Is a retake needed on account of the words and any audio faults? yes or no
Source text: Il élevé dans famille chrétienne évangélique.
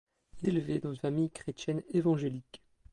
no